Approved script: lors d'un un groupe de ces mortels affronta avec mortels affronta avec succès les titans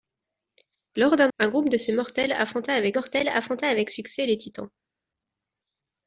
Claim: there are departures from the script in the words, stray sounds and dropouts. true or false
false